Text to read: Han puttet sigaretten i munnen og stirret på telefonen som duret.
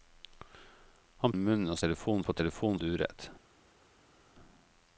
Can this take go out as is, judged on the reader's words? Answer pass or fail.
fail